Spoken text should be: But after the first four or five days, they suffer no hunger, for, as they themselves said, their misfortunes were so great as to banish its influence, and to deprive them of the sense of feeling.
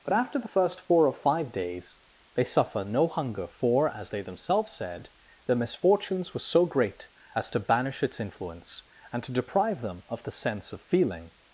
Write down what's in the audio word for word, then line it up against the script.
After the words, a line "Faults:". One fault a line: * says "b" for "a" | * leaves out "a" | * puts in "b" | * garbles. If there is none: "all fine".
But after the first four or five days, they suffer no hunger, for, as they themselves said, their misfortunes were so great as to banish its influence, and to deprive them of the sense of feeling.
Faults:
all fine